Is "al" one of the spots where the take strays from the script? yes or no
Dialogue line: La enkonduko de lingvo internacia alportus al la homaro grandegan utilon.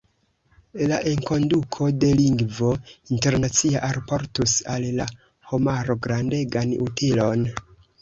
no